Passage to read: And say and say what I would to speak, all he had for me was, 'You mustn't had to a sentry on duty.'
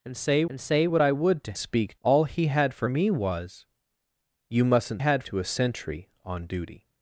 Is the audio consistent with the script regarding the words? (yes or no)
yes